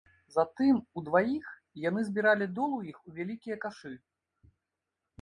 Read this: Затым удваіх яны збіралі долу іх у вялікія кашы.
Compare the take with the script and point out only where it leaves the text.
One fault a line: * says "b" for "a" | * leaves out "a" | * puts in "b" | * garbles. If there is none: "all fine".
all fine